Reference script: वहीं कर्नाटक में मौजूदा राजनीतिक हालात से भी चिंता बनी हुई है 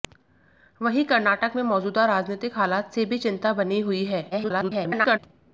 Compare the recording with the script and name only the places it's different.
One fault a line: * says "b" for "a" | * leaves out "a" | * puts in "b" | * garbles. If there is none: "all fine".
* garbles